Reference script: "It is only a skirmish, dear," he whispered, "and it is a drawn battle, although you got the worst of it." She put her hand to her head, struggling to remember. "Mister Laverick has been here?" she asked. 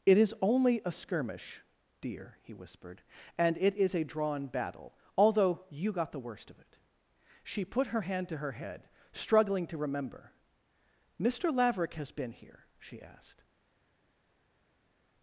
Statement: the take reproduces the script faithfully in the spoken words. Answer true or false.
true